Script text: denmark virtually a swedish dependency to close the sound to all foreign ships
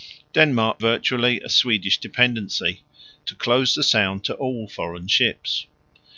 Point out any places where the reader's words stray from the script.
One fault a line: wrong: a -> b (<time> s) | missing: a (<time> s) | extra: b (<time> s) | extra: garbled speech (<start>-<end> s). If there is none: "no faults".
no faults